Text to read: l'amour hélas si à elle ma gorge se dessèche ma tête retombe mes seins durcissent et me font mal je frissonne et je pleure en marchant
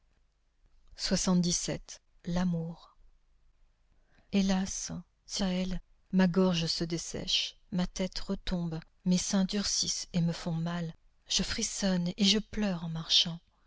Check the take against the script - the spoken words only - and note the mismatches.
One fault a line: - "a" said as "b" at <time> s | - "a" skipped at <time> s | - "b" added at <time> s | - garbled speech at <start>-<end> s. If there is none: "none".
none